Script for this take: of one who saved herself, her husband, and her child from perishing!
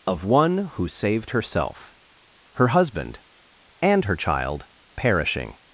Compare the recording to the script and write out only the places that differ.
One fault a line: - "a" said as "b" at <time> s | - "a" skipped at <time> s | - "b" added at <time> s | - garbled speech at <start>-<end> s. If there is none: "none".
- "from" skipped at 4.7 s